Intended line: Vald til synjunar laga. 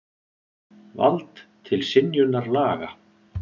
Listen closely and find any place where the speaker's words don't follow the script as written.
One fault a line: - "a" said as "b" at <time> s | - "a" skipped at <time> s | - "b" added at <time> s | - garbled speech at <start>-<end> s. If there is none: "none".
none